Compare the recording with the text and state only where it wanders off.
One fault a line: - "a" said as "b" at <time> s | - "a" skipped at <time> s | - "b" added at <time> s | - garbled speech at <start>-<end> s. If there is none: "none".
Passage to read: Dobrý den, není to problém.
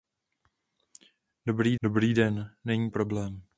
- "dobrý" added at 1.8 s
- "to" skipped at 2.9 s